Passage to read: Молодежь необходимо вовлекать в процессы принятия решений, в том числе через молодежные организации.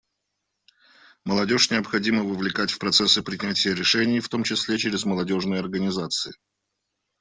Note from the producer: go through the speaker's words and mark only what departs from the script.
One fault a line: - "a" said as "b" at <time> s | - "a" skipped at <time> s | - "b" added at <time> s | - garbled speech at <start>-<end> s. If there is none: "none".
none